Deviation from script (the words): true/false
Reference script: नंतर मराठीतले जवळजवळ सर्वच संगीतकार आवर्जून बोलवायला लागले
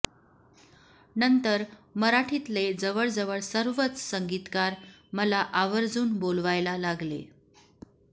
true